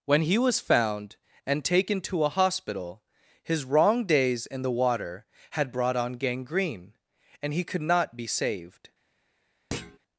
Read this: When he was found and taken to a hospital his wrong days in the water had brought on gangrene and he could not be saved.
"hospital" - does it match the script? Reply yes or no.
yes